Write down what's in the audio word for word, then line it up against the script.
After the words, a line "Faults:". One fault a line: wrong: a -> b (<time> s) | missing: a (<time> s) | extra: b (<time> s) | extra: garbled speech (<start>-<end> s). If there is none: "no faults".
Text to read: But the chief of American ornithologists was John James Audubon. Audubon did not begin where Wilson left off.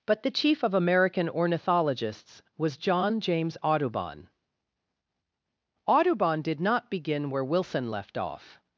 But the chief of American ornithologists was John James Audubon. Audubon did not begin where Wilson left off.
Faults:
no faults